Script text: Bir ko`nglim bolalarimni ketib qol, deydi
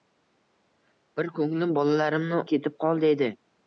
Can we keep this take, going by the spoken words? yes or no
yes